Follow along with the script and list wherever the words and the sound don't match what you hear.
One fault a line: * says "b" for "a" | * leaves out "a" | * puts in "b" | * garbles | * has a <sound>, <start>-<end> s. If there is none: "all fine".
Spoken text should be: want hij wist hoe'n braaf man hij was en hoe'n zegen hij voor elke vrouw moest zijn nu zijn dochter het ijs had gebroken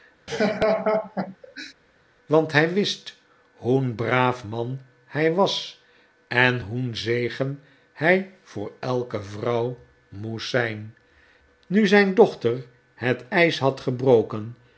* has a laugh, 0.3-1.7 s